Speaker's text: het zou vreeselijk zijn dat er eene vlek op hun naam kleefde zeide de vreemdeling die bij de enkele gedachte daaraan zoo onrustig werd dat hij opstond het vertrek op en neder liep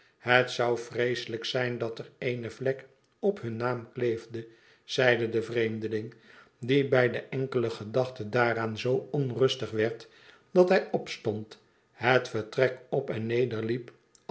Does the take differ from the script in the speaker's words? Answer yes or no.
no